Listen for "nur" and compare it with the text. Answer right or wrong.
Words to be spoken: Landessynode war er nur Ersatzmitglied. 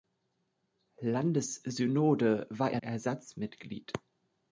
wrong